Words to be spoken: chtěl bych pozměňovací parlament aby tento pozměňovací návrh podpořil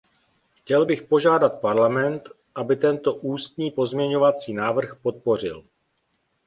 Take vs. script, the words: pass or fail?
fail